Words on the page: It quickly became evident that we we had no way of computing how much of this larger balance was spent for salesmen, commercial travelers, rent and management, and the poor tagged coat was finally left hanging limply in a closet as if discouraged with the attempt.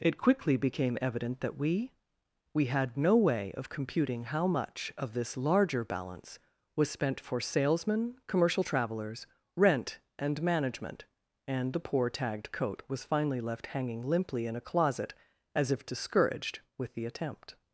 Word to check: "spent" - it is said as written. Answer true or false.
true